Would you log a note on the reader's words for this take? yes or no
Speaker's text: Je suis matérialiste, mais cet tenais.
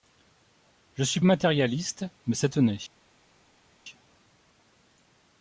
no